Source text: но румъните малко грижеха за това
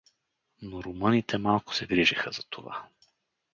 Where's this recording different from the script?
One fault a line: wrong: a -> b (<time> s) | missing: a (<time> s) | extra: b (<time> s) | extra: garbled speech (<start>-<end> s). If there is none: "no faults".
extra: се (1.8 s)